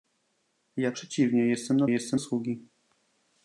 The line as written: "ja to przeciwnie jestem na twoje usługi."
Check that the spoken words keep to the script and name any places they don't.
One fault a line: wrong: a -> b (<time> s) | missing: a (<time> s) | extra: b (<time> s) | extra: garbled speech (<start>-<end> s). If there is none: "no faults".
missing: to (0.9 s)
wrong: twoje -> jestem (1.9 s)